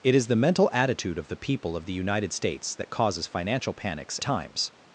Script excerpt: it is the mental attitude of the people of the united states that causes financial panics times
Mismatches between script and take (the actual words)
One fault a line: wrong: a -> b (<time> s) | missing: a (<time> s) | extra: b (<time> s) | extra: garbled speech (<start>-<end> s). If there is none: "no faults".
no faults